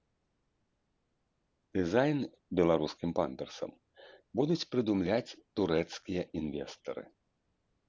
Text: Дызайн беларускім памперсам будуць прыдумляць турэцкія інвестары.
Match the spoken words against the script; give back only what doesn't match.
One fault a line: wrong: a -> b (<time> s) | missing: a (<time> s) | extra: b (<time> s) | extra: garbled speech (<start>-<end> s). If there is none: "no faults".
no faults